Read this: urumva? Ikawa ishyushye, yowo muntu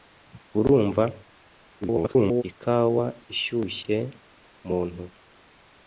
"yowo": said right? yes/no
no